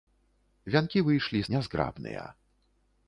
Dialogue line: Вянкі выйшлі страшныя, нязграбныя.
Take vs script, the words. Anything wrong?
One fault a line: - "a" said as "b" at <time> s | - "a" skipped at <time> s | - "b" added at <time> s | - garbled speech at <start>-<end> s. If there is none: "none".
- "страшныя" skipped at 1.4 s